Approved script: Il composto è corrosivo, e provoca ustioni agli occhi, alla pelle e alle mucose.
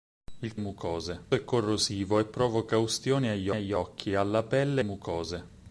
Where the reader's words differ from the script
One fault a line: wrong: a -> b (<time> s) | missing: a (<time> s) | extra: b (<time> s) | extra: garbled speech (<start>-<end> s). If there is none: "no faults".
wrong: composto -> mucose (0.6 s)
extra: agli (3.5 s)
missing: alle (4.8 s)